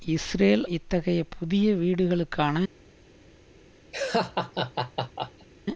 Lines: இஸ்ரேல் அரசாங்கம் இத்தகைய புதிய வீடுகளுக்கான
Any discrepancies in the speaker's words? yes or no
yes